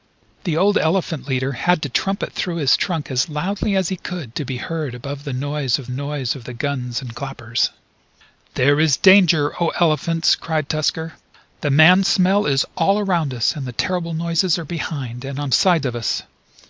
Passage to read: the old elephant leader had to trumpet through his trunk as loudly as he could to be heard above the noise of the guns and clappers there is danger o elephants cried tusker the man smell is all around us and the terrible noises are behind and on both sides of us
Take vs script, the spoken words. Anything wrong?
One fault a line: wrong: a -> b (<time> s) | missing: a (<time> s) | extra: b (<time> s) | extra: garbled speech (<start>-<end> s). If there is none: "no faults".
extra: noise of (5.9 s)
missing: both (15.5 s)